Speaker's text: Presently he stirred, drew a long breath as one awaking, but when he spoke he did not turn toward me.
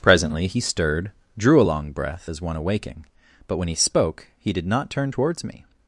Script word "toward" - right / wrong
wrong